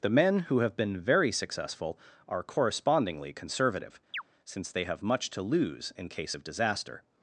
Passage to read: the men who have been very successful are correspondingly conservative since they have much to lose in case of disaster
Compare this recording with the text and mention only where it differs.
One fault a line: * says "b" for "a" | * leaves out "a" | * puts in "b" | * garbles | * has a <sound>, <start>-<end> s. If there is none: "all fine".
* has a chirp, 4.1-4.2 s